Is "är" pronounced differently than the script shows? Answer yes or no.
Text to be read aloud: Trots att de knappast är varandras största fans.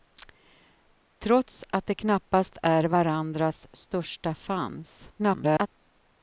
no